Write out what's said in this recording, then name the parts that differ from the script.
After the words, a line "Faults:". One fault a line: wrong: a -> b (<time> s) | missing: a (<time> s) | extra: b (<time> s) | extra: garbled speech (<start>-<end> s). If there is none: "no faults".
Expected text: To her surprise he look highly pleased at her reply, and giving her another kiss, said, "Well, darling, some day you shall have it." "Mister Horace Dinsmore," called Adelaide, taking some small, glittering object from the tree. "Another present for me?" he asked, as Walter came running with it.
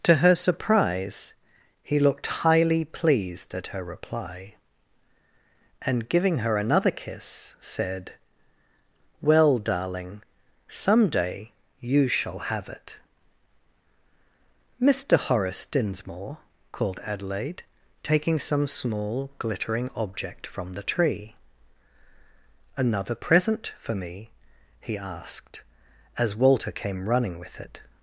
To her surprise he looked highly pleased at her reply, and giving her another kiss, said, "Well, darling, some day you shall have it." "Mister Horace Dinsmore," called Adelaide, taking some small, glittering object from the tree. "Another present for me?" he asked, as Walter came running with it.
Faults:
wrong: look -> looked (2.0 s)